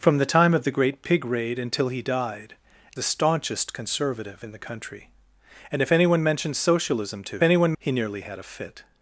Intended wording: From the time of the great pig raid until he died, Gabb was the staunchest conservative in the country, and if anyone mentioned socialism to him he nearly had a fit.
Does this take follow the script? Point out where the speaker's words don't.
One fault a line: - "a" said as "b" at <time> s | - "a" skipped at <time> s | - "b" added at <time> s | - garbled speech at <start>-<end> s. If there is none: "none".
- "Gabb was" skipped at 2.5 s
- "him" said as "anyone" at 7.4 s